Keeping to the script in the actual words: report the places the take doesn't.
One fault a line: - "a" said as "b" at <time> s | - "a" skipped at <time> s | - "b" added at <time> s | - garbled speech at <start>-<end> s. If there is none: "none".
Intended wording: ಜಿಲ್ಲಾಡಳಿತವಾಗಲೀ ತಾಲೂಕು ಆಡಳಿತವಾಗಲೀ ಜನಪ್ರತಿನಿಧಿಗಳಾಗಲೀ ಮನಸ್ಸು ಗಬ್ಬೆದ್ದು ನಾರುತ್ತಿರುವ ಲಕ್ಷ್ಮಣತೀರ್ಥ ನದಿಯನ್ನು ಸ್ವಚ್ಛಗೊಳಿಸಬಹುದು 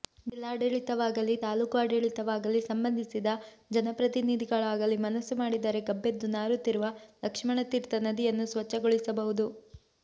- "ಸಂಬಂಧಿಸಿದ" added at 2.7 s
- "ಮಾಡಿದರೆ" added at 5.4 s